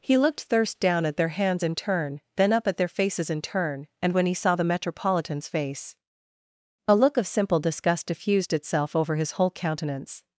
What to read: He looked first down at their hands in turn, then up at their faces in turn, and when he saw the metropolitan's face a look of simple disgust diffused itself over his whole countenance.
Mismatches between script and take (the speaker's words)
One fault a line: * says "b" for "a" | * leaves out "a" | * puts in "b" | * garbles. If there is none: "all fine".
* says "thirst" for "first"